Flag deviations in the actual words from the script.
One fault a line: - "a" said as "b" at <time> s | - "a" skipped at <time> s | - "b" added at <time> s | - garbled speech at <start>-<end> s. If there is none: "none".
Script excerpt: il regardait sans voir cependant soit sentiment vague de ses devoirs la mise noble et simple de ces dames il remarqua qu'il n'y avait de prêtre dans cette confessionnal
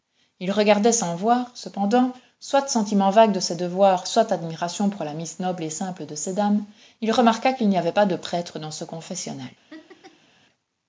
- "soit admiration pour" added at 4.1 s
- "pas" added at 7.9 s
- "cette" said as "ce" at 8.7 s